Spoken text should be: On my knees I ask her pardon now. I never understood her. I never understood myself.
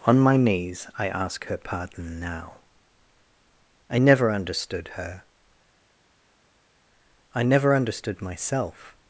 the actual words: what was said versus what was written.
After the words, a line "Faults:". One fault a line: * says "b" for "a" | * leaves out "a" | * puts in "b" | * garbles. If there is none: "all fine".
On my knees I ask her pardon now. I never understood her. I never understood myself.
Faults:
all fine